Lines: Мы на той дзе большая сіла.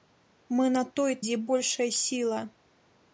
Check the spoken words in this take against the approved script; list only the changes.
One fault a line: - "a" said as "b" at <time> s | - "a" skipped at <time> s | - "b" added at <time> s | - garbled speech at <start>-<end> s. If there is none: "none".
none